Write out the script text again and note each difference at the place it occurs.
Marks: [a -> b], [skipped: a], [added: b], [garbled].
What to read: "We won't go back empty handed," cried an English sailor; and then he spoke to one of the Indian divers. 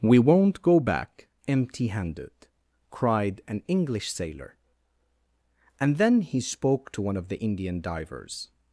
"We won't go back empty handed," cried an English sailor; and then he spoke to one of the Indian divers.